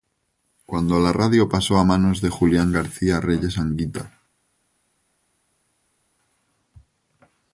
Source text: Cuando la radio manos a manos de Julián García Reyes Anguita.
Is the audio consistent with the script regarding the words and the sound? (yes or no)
no